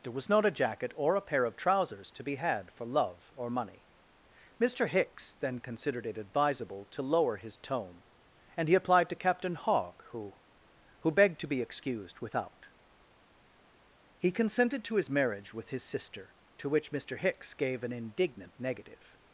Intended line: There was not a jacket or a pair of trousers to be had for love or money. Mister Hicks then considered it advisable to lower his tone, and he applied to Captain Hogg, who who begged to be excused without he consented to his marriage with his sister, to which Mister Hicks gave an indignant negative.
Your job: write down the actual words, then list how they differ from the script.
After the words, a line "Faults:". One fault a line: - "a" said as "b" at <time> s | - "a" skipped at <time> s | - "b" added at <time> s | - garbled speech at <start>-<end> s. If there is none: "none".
There was not a jacket or a pair of trousers to be had for love or money. Mister Hicks then considered it advisable to lower his tone, and he applied to Captain Hogg, who who begged to be excused without he consented to his marriage with his sister, to which Mister Hicks gave an indignant negative.
Faults:
none